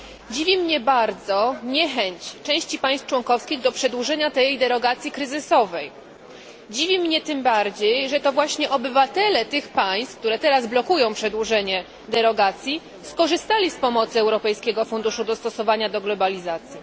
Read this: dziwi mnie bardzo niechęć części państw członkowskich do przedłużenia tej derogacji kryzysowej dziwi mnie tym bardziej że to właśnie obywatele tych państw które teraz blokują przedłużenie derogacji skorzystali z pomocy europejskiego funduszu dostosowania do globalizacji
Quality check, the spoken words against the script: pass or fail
pass